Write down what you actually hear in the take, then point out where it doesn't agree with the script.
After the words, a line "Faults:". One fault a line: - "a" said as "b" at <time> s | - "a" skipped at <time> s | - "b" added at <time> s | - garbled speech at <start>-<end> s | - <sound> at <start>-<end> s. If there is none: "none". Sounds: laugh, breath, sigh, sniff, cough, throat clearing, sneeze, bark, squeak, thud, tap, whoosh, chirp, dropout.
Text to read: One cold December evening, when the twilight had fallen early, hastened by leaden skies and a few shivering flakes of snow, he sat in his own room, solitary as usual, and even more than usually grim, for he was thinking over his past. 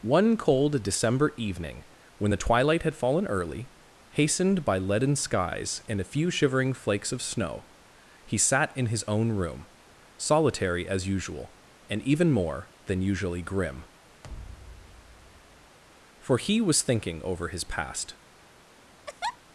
One cold December evening, when the twilight had fallen early, hastened by leaden skies and a few shivering flakes of snow, he sat in his own room, solitary as usual, and even more than usually grim, for he was thinking over his past.
Faults:
- thud at 14.2-15.8 s
- laugh at 19.1-19.4 s